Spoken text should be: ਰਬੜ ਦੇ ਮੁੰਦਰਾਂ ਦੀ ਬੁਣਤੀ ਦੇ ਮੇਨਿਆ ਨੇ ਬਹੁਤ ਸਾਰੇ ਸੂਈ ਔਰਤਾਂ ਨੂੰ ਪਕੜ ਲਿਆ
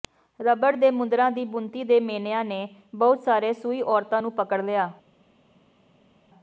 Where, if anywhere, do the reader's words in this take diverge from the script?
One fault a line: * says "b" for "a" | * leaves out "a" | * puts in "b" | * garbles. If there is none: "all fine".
all fine